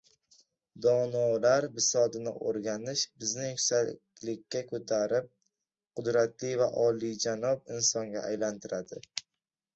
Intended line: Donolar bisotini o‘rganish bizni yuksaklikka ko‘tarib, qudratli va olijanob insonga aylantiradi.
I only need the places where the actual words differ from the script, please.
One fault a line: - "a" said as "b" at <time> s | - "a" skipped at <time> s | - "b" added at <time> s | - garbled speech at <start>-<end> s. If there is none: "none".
none